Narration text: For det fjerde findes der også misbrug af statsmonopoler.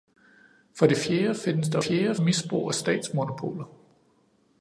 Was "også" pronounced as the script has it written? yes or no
no